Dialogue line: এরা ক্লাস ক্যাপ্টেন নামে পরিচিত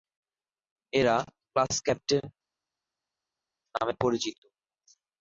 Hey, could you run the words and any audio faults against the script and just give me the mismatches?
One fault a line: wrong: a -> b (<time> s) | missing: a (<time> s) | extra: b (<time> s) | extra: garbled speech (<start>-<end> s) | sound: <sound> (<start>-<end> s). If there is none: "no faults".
no faults